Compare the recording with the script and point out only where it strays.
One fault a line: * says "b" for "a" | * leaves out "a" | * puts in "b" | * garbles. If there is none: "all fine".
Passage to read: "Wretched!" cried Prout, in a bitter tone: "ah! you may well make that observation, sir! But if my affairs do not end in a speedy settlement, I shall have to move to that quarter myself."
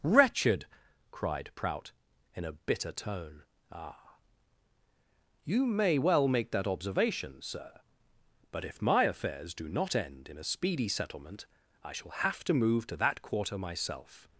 all fine